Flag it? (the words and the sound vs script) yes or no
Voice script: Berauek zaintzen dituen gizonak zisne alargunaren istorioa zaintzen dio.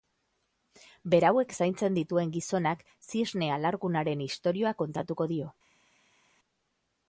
yes